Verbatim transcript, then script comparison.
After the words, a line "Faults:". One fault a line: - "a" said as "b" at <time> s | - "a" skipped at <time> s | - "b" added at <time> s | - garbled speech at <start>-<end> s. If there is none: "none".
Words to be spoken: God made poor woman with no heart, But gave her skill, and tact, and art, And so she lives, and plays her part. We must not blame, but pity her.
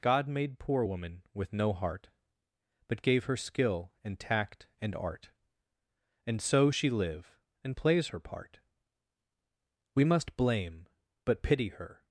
God made poor woman with no heart, But gave her skill, and tact, and art, And so she live, and plays her part. We must blame, but pity her.
Faults:
- "lives" said as "live" at 6.9 s
- "not" skipped at 10.4 s